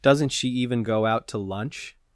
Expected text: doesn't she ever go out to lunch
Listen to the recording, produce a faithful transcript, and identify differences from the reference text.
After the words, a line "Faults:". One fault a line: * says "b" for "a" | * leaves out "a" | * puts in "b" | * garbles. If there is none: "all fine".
doesn't she even go out to lunch
Faults:
* says "even" for "ever"